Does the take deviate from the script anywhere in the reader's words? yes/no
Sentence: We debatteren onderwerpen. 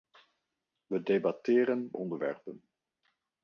no